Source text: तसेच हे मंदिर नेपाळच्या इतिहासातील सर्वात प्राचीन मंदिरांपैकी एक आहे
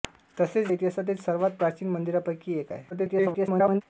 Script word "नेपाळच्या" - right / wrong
wrong